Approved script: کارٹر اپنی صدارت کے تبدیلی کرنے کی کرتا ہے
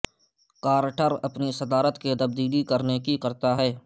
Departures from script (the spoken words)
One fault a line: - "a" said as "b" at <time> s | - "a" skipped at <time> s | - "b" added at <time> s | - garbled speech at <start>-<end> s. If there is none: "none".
none